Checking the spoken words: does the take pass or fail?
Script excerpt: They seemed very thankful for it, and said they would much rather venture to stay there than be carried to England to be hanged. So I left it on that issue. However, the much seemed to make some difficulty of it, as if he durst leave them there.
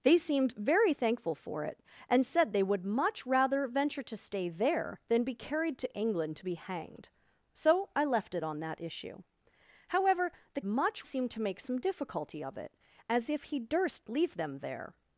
pass